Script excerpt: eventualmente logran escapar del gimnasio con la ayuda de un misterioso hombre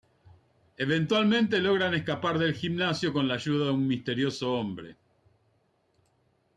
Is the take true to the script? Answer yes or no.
yes